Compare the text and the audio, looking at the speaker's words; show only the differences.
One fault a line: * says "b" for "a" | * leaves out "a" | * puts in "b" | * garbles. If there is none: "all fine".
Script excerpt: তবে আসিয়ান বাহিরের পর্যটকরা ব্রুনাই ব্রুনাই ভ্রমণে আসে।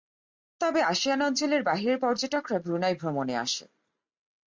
* puts in "অঞ্চলের"
* leaves out "ব্রুনাই"